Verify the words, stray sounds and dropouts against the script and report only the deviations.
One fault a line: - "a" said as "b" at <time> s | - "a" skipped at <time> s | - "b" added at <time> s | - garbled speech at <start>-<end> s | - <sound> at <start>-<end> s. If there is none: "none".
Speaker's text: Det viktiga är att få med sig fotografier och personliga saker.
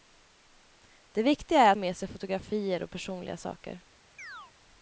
- "få" skipped at 1.8 s
- chirp at 4.2-4.5 s